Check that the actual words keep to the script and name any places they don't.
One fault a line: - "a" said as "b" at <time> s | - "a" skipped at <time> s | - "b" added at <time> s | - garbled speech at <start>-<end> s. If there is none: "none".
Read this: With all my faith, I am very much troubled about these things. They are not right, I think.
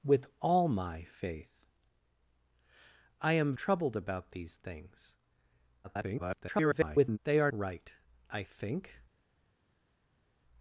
- "very much" skipped at 3.5 s
- garbled speech at 5.8-7.2 s
- "not" skipped at 7.5 s